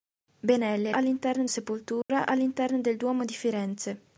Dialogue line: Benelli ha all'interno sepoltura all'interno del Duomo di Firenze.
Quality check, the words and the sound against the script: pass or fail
fail